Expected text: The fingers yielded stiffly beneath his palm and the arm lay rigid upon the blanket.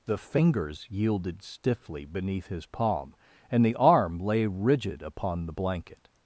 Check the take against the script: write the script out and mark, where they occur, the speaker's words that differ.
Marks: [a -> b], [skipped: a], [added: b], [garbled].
The fingers yielded stiffly beneath his palm and the arm lay rigid upon the blanket.